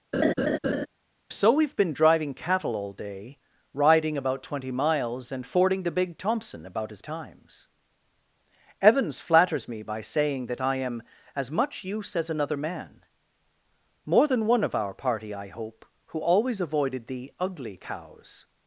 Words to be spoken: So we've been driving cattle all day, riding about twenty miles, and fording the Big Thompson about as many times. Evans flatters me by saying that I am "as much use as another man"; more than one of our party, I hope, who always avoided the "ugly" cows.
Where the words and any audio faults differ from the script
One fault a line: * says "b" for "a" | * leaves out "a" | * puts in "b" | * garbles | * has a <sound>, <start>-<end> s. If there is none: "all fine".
* has a laugh, 0.1-0.9 s
* leaves out "many"